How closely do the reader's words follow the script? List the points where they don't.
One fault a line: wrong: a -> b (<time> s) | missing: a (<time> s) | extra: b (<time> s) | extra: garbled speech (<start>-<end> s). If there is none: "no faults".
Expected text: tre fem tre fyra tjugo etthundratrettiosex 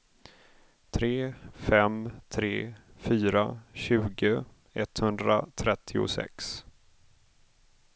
no faults